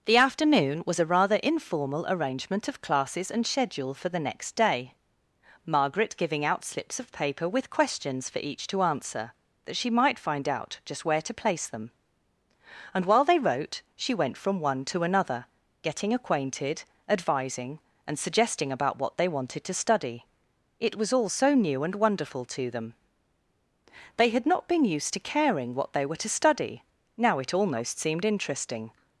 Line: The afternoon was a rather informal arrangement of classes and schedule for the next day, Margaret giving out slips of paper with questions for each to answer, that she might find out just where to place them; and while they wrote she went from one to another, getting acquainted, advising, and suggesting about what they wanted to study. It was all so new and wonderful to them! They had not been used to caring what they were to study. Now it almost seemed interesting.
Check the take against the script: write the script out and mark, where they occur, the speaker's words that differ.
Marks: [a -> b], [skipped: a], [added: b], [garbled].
The afternoon was a rather informal arrangement of classes and schedule for the next day, Margaret giving out slips of paper with questions for each to answer, that she might find out just where to place them; and while they wrote she went from one to another, getting acquainted, advising, and suggesting about what they wanted to study. It was all so new and wonderful to them! They had not been used to caring what they were to study. Now it almost seemed interesting.